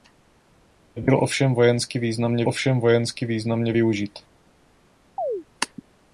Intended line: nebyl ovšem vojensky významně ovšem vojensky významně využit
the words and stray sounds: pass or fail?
fail